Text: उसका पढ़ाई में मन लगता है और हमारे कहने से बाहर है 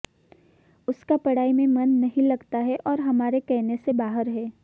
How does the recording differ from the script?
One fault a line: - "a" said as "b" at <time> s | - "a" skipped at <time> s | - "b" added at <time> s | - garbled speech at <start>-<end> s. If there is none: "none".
- "नहीं" added at 1.9 s